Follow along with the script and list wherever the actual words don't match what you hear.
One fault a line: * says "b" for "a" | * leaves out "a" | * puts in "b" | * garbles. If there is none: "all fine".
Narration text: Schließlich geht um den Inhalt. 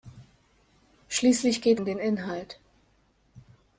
all fine